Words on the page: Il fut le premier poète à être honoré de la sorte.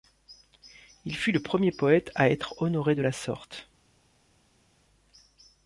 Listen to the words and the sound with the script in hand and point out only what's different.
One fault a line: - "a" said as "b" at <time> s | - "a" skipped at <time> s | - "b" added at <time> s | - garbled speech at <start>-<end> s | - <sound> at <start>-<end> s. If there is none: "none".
none